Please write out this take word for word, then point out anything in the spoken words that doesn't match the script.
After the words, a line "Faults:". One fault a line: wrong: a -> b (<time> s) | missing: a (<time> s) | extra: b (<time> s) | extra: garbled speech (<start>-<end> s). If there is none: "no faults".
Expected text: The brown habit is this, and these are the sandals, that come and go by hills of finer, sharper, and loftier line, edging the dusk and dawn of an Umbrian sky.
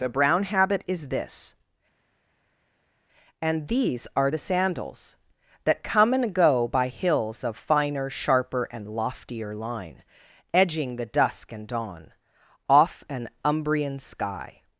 The brown habit is this, and these are the sandals, that come and go by hills of finer, sharper, and loftier line, edging the dusk and dawn off an Umbrian sky.
Faults:
wrong: of -> off (12.7 s)